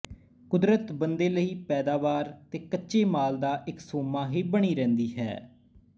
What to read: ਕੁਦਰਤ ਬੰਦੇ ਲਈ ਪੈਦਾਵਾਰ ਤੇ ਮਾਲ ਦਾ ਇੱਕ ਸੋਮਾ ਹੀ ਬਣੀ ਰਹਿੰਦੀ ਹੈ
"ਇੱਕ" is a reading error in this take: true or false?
false